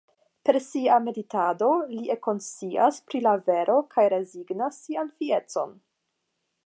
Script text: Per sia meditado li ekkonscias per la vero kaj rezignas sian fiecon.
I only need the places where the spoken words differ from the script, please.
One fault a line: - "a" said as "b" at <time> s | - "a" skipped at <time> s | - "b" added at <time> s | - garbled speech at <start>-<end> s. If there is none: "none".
- "per" said as "pri" at 3.1 s